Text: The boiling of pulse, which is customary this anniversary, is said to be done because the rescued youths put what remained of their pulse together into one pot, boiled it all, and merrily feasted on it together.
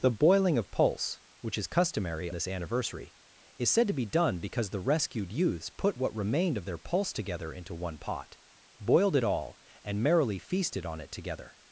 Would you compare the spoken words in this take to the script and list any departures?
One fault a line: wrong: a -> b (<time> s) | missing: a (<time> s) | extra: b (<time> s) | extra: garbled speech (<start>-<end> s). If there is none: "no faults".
no faults